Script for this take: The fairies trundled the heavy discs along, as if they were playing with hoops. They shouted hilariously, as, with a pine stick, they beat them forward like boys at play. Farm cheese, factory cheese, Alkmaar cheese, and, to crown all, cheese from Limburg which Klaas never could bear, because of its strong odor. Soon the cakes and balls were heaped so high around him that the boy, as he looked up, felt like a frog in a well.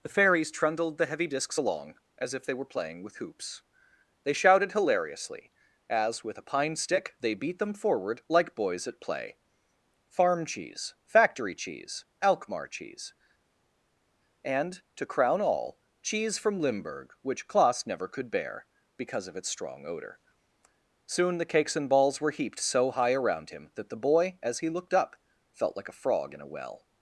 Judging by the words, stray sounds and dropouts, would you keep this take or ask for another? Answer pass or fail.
pass